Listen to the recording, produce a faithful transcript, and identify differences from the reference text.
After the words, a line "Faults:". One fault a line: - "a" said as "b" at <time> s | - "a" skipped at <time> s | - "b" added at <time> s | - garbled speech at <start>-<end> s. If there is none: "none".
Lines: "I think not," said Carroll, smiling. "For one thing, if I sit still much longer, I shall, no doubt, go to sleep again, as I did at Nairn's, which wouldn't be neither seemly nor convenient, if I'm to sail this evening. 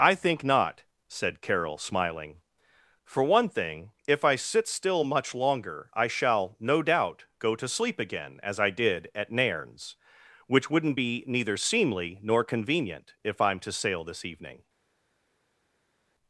"I think not," said Carroll, smiling. "For one thing, if I sit still much longer, I shall, no doubt, go to sleep again, as I did at Nairn's, which wouldn't be neither seemly nor convenient, if I'm to sail this evening.
Faults:
none